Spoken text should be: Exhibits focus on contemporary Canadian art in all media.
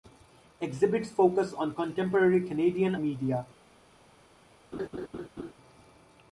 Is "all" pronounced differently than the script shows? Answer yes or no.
yes